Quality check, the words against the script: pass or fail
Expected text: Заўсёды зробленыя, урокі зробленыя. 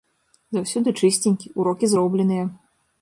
fail